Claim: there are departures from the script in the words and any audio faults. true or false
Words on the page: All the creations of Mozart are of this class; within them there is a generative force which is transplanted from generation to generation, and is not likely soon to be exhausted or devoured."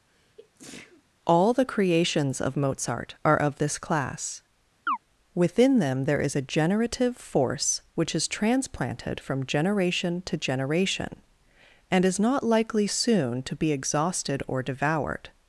true